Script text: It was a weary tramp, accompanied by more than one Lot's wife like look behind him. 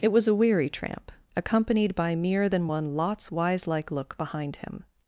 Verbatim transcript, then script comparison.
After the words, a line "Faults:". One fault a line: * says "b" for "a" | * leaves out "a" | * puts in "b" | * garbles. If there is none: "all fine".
It was a weary tramp, accompanied by mere than one Lot's wise like look behind him.
Faults:
* says "mere" for "more"
* says "wise" for "wife"